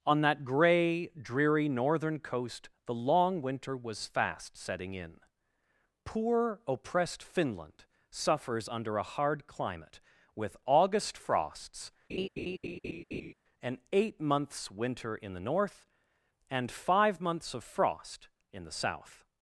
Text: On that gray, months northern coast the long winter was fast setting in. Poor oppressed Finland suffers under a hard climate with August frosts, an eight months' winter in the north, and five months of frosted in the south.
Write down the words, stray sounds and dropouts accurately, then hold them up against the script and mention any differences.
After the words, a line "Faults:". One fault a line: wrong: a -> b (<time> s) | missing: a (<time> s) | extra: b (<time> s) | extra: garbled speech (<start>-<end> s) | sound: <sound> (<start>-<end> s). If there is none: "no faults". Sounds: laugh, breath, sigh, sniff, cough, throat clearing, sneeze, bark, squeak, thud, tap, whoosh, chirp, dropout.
On that gray, dreary northern coast the long winter was fast setting in. Poor oppressed Finland suffers under a hard climate with August frosts, an eight months' winter in the north, and five months of frost in the south.
Faults:
wrong: months -> dreary (1.1 s)
sound: laugh (12.1-13.3 s)
wrong: frosted -> frost (17.6 s)